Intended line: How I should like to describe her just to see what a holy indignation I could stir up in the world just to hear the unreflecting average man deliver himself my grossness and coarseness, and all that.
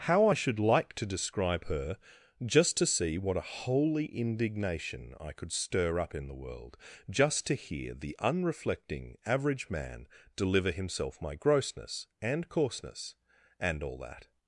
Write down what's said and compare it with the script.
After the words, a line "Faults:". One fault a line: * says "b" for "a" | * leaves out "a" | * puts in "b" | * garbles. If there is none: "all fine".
How I should like to describe her just to see what a holy indignation I could stir up in the world just to hear the unreflecting average man deliver himself my grossness and coarseness, and all that.
Faults:
all fine